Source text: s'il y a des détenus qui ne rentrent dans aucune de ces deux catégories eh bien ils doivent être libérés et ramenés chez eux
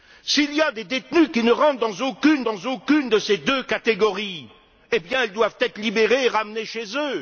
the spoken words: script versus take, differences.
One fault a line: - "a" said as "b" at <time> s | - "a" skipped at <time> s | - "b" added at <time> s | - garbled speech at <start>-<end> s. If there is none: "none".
- "dans aucune" added at 2.4 s